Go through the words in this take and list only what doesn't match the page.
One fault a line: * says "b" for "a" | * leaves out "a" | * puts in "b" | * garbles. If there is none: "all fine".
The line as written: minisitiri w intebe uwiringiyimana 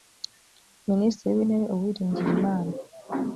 all fine